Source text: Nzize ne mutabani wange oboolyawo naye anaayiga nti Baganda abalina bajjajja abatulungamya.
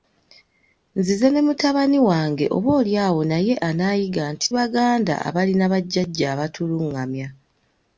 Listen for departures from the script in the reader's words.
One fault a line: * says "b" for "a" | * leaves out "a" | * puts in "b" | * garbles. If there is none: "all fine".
all fine